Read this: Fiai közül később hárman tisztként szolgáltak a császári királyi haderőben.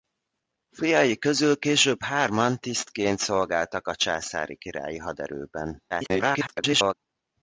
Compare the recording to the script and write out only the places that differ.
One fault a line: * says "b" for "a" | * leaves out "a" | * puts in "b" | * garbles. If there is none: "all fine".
* garbles